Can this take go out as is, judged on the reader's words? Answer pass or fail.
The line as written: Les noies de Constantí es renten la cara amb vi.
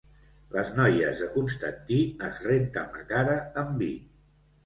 pass